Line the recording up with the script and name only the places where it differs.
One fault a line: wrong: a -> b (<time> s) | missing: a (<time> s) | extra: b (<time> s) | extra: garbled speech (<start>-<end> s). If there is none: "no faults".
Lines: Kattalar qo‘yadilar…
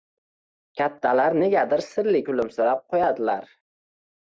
extra: negadir sirli kulimsirab (1.4 s)